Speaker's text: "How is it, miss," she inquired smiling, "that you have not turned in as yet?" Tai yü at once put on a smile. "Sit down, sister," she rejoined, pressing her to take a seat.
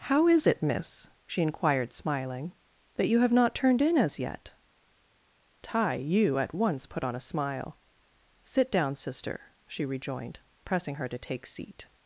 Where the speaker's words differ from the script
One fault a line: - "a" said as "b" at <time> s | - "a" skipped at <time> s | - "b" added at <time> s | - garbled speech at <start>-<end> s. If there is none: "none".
- "a" skipped at 11.4 s